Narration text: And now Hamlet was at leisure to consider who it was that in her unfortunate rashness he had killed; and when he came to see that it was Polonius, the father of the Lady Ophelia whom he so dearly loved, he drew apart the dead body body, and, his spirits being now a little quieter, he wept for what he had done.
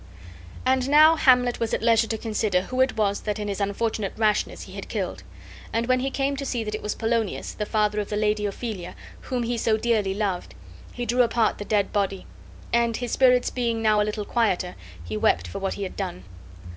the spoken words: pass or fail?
fail